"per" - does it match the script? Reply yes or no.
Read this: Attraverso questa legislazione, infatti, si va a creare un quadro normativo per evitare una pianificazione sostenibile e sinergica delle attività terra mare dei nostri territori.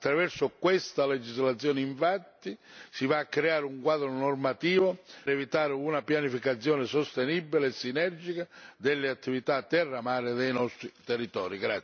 no